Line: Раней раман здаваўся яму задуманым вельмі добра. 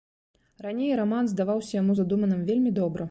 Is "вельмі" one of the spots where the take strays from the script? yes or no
no